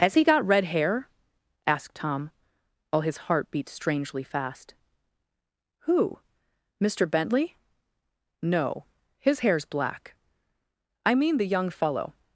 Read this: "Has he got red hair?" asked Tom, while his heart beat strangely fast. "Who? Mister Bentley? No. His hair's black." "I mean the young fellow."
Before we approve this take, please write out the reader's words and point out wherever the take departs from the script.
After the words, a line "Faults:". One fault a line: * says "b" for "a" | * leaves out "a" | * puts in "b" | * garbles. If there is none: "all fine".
"Has he got red hair?" asked Tom, while his heart beat strangely fast. "Who? Mister Bentley? No. His hair's black." "I mean the young fellow."
Faults:
all fine